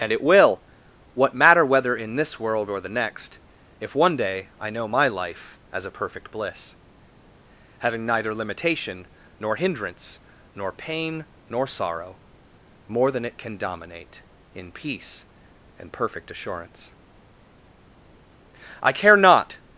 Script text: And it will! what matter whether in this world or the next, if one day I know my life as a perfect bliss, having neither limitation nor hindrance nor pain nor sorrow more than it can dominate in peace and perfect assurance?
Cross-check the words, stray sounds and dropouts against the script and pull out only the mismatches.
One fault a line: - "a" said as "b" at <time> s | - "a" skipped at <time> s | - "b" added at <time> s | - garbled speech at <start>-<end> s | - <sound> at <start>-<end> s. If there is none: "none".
- "I care not" added at 18.8 s